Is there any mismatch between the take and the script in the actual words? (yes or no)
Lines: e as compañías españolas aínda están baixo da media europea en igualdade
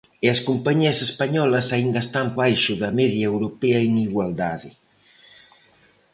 no